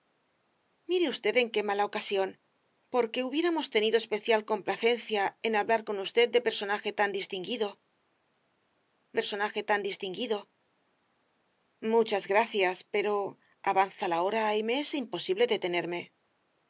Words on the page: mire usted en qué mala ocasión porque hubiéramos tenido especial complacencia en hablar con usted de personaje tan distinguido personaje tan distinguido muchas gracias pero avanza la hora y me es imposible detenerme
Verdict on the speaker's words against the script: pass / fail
pass